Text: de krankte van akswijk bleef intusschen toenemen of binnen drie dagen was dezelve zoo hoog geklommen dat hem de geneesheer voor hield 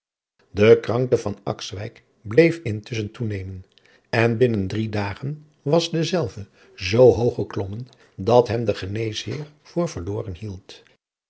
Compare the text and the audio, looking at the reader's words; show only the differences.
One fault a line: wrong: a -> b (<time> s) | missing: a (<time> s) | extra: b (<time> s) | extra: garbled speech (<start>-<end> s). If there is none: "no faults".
wrong: of -> en (4.1 s)
extra: verloren (9.9 s)